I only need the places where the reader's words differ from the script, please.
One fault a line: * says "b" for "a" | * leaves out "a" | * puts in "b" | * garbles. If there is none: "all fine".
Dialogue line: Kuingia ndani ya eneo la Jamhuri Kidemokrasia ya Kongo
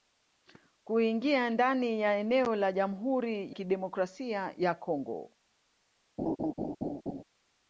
all fine